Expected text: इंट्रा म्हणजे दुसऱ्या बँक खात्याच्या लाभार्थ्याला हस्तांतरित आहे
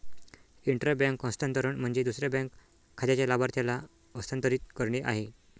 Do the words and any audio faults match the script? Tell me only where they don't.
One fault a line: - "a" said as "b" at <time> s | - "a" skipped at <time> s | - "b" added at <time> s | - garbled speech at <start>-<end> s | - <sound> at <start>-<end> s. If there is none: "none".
- "बँक हस्तांतरण" added at 0.9 s
- "करणे" added at 4.8 s